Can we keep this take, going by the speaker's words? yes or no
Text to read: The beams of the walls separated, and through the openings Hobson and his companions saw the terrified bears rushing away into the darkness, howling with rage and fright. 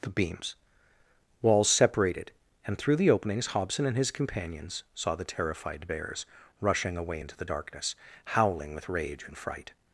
no